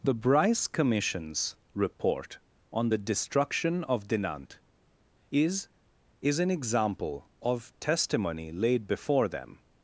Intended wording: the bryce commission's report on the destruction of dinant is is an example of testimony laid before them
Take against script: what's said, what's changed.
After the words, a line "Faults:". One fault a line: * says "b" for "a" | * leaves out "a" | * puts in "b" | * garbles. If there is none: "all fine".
the bryce commission's report on the destruction of dinant is is an example of testimony laid before them
Faults:
all fine